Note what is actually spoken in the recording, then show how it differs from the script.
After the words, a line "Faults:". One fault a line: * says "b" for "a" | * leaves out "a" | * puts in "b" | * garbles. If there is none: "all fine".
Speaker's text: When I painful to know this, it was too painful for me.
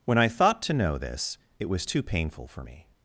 When I thought to know this, it was too painful for me.
Faults:
* says "thought" for "painful"